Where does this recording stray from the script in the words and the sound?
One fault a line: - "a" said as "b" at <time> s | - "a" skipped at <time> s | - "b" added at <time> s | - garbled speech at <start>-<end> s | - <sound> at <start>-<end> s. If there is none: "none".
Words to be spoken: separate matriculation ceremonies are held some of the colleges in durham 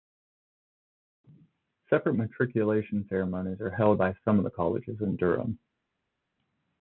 - "by" added at 4.0 s